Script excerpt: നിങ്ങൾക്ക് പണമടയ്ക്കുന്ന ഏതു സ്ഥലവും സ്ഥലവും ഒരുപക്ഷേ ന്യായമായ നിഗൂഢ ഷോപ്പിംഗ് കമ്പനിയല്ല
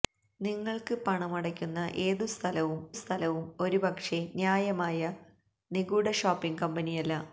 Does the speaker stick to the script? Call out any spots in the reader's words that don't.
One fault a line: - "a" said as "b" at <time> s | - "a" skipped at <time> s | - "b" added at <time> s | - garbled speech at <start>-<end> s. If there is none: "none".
none